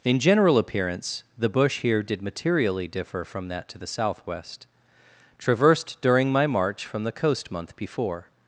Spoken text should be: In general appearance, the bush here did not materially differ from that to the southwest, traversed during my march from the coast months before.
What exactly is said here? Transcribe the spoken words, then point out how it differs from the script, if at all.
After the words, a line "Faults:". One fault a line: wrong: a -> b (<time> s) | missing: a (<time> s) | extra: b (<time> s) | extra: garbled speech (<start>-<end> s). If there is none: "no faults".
In general appearance, the bush here did materially differ from that to the southwest, traversed during my march from the coast month before.
Faults:
missing: not (2.2 s)
wrong: months -> month (7.5 s)